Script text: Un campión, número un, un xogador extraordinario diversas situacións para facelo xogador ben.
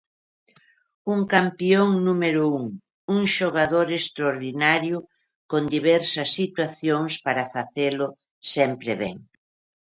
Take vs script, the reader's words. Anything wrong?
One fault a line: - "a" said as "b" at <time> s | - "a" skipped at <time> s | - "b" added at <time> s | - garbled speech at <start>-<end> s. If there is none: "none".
- "con" added at 5.5 s
- "xogador" said as "sempre" at 8.5 s